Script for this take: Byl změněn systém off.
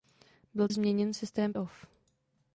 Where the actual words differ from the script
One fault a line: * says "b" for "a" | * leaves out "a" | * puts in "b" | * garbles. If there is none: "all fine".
all fine